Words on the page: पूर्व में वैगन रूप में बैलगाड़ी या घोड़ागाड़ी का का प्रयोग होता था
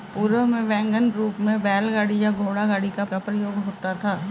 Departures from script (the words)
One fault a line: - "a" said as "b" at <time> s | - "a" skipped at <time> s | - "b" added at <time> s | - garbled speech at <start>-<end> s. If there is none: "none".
none